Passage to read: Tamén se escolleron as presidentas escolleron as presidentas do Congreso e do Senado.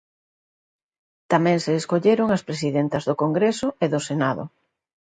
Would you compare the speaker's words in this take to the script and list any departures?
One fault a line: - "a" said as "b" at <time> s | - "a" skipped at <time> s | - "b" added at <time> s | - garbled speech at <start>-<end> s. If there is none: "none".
- "escolleron as presidentas" skipped at 3.0 s